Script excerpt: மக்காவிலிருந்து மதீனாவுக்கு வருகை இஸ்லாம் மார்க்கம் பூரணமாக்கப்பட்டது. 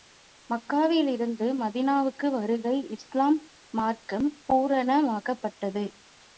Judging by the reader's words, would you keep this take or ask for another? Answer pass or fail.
pass